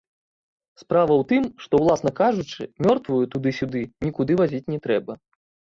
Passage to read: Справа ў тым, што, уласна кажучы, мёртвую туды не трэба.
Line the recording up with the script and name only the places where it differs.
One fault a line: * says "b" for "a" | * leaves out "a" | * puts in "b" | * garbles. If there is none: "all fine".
* puts in "сюды нікуды вазіць"